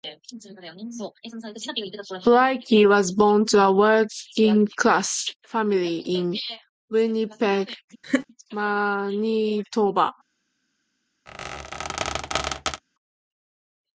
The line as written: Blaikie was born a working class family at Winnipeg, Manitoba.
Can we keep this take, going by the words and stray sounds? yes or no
no